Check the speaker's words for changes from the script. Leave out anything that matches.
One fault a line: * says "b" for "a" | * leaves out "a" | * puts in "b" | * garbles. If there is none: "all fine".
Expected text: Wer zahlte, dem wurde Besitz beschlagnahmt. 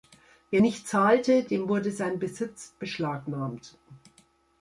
* puts in "nicht"
* puts in "sein"